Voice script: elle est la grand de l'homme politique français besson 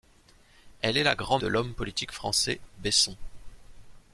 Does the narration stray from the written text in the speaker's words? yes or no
no